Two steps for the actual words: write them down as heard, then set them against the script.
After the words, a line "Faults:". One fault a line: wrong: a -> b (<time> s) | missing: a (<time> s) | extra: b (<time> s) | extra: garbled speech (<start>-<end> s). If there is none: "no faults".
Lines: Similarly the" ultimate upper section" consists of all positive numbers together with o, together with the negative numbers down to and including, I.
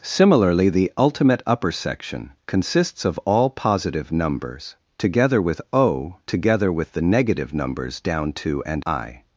Similarly the" ultimate upper section" consists of all positive numbers together with o, together with the negative numbers down to and I.
Faults:
missing: including (8.8 s)